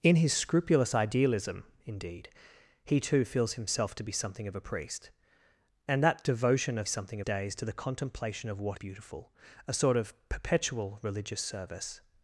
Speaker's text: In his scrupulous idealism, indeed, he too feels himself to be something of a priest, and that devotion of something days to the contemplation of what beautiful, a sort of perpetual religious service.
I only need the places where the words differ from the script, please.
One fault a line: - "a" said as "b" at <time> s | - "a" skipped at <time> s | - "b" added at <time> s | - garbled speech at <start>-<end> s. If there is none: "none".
none